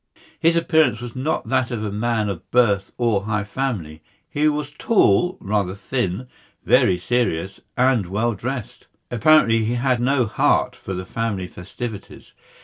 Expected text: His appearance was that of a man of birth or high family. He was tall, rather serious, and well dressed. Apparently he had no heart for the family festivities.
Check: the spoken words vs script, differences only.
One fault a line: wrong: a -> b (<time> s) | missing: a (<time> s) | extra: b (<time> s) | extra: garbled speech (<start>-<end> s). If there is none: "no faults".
extra: not (1.1 s)
extra: thin very (5.7 s)